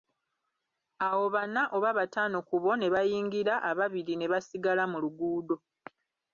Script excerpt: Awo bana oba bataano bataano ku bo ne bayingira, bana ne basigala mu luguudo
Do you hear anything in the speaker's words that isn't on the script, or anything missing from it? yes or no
yes